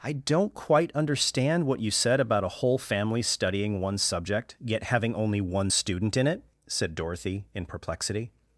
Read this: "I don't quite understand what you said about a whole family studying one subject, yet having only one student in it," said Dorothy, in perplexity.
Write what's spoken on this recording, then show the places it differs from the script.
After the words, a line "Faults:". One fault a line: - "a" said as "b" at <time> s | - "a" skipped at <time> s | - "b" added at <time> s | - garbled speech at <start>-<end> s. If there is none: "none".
"I don't quite understand what you said about a whole family studying one subject, yet having only one student in it," said Dorothy, in perplexity.
Faults:
none